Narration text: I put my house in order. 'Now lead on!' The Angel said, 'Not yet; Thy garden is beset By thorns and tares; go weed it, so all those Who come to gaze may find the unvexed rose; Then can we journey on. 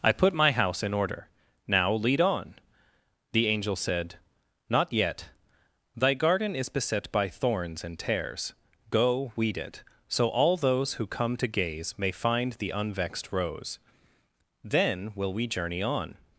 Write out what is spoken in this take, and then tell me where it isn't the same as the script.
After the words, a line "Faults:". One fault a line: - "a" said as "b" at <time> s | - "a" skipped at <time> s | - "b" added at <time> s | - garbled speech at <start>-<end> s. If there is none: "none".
I put my house in order. 'Now lead on!' The Angel said, 'Not yet; Thy garden is beset By thorns and tares; go weed it, so all those Who come to gaze may find the unvexed rose; Then will we journey on.
Faults:
- "can" said as "will" at 15.2 s